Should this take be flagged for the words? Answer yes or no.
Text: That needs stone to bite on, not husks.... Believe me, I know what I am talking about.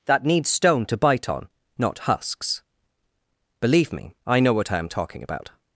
no